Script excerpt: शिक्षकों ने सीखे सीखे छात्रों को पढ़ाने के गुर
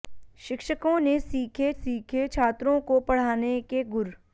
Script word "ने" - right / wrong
right